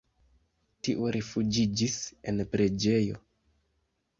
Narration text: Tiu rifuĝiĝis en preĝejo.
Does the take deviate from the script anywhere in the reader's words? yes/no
no